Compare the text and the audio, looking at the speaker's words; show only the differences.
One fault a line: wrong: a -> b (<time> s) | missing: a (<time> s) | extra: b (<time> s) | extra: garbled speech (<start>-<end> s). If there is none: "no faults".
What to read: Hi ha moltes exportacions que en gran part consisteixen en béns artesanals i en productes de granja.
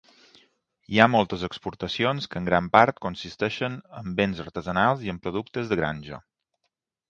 no faults